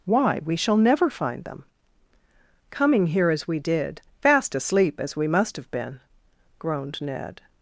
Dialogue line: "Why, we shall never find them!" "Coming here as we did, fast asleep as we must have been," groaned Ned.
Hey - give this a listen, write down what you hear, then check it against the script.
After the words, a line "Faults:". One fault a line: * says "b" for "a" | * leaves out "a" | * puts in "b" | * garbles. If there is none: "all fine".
"Why, we shall never find them!" "Coming here as we did, fast asleep as we must have been," groaned Ned.
Faults:
all fine